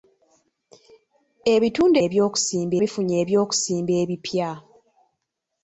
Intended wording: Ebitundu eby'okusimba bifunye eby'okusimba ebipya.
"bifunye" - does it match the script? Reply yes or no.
yes